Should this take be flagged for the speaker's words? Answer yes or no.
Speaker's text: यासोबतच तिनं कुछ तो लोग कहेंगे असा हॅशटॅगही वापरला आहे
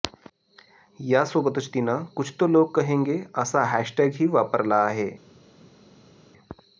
no